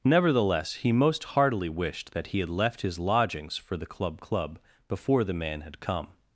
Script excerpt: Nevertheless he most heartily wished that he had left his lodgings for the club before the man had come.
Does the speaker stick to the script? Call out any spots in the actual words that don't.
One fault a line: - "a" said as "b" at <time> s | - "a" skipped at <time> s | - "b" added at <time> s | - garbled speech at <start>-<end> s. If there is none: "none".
- "club" added at 4.2 s